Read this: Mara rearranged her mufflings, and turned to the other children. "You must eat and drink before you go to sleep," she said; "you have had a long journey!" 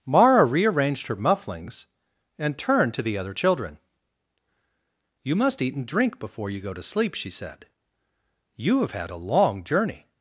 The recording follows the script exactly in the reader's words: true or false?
true